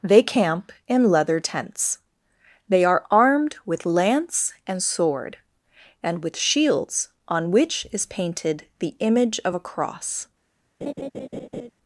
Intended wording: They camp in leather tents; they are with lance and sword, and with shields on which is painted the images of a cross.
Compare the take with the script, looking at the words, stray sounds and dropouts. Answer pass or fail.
fail